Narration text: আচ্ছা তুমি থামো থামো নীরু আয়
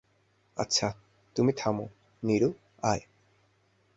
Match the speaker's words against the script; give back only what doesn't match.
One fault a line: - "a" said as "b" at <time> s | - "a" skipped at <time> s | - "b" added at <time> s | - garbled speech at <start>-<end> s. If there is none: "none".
- "থামো" skipped at 1.9 s